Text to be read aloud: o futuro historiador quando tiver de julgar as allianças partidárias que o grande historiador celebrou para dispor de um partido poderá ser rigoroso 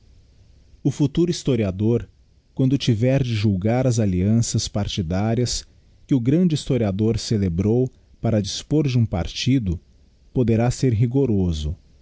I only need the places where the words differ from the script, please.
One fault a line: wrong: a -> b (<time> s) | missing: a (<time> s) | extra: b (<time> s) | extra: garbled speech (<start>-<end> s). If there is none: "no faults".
no faults